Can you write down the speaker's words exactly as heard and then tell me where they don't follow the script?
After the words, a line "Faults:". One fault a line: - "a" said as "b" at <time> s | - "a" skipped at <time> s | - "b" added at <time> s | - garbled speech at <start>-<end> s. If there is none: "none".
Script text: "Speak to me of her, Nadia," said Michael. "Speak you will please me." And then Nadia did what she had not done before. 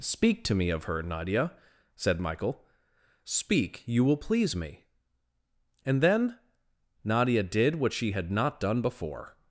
"Speak to me of her, Nadia," said Michael. "Speak you will please me." And then Nadia did what she had not done before.
Faults:
none